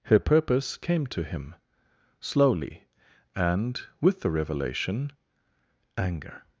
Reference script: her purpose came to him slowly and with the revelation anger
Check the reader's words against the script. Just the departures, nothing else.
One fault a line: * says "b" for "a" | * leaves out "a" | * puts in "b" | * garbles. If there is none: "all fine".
all fine